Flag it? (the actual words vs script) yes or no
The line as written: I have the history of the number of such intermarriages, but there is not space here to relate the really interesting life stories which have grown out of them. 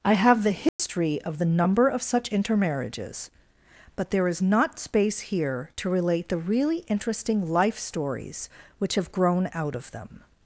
no